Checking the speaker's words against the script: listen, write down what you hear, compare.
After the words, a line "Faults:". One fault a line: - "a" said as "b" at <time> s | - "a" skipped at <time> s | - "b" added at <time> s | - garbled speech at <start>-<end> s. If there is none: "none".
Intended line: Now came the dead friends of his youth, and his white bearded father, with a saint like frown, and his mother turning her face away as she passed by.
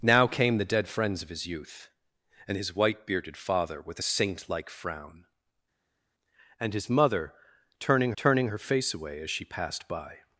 Now came the dead friends of his youth, and his white bearded father, with a saint like frown, and his mother turning turning her face away as she passed by.
Faults:
- "turning" added at 8.2 s